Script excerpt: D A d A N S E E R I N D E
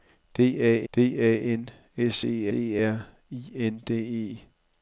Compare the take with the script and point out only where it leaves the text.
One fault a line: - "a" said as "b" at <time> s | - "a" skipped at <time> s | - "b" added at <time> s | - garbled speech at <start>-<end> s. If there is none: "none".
none